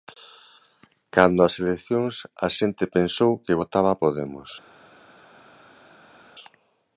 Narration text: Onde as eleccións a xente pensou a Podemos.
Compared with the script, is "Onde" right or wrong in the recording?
wrong